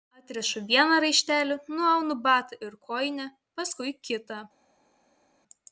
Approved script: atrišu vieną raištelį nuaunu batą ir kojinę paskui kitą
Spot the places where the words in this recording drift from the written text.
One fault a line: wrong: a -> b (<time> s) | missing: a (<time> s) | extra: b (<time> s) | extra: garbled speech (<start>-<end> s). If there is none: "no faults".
no faults